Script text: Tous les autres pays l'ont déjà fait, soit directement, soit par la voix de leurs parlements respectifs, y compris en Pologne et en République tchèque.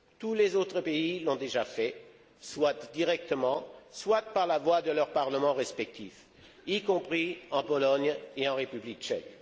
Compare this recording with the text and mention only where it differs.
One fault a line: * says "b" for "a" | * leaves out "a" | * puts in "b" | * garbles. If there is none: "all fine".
all fine